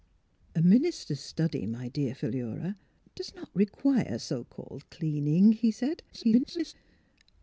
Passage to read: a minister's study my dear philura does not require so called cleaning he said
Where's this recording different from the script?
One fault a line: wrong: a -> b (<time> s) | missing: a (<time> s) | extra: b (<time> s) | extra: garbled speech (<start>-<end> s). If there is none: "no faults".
extra: garbled speech (6.1-6.7 s)